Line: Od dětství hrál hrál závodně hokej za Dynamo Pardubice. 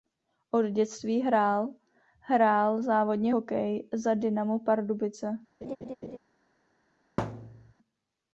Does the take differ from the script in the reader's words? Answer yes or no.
no